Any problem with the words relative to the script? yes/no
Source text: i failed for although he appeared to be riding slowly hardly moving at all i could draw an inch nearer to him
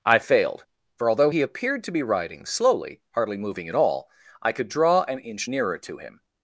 no